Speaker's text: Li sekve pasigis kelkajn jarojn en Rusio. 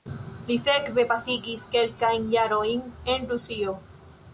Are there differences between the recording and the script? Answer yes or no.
no